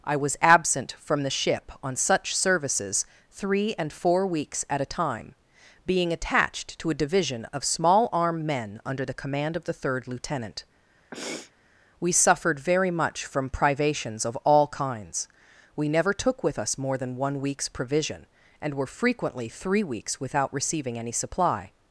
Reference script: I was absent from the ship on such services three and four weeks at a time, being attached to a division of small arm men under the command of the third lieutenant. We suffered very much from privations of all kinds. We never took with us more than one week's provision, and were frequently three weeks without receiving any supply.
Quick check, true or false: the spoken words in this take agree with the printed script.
true